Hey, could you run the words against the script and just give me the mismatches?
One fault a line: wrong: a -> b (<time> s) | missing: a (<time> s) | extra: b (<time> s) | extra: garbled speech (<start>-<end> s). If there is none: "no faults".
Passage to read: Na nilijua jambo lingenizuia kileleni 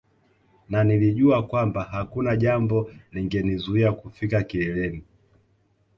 extra: kwamba hakuna (1.5 s)
extra: kufika (3.9 s)